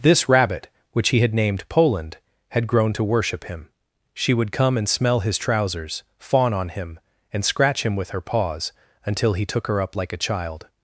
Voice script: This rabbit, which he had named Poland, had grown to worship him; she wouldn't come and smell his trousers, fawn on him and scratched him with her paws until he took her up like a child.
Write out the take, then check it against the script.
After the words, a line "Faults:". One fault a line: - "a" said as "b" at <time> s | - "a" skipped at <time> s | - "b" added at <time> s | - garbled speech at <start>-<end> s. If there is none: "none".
This rabbit, which he had named Poland, had grown to worship him; she would come and smell his trousers, fawn on him and scratch him with her paws until he took her up like a child.
Faults:
- "wouldn't" said as "would" at 4.3 s
- "scratched" said as "scratch" at 7.4 s